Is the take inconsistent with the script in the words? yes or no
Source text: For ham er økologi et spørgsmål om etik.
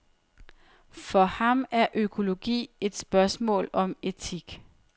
no